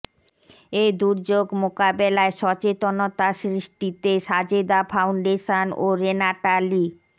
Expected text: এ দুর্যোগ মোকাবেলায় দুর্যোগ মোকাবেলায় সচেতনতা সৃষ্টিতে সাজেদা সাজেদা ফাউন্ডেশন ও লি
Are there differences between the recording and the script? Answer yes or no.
yes